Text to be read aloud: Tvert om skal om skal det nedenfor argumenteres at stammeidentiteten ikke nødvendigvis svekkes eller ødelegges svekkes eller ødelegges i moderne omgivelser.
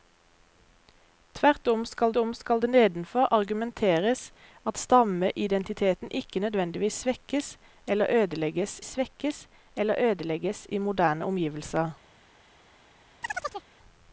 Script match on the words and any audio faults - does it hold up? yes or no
no